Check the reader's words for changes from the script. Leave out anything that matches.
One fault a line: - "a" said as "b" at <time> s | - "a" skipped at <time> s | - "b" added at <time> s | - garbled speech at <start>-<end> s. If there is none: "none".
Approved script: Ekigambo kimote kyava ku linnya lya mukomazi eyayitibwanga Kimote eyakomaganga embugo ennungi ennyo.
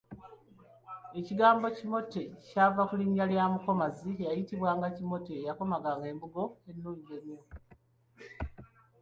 none